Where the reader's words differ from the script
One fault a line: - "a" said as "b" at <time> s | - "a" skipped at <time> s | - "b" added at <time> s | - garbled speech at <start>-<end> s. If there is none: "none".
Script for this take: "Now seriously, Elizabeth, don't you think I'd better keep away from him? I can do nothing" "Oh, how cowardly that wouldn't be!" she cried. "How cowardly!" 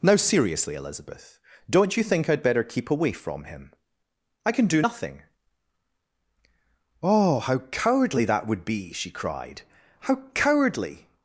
- "wouldn't" said as "would" at 8.5 s